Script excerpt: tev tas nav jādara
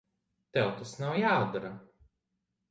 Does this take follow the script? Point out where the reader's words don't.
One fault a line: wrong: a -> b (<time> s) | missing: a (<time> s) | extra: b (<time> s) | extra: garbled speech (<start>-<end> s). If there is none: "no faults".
no faults